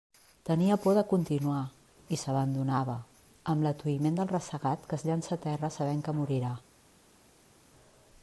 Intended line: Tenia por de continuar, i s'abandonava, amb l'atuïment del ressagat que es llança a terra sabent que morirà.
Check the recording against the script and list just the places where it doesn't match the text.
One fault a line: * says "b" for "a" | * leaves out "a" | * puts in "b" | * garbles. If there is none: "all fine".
all fine